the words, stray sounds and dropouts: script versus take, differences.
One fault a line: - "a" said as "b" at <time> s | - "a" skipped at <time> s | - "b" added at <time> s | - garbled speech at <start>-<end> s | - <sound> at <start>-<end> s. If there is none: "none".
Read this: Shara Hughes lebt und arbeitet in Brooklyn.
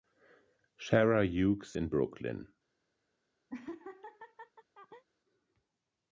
- "lebt und arbeitet" skipped at 1.8 s
- laugh at 3.5-5.0 s